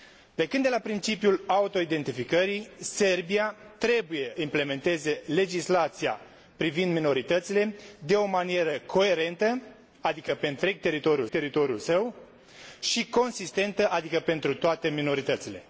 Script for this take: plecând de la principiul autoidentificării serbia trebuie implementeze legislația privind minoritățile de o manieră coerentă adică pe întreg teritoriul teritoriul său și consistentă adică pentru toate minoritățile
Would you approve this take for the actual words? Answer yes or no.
yes